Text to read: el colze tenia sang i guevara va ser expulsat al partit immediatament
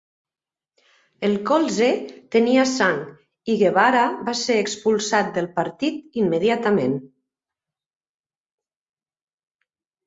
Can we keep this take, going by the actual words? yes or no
no